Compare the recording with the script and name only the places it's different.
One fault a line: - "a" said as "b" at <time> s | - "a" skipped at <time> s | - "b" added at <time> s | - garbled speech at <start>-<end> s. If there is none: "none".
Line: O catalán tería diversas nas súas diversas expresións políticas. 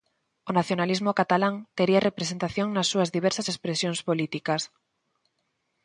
- "nacionalismo" added at 0.6 s
- "diversas" said as "representación" at 2.1 s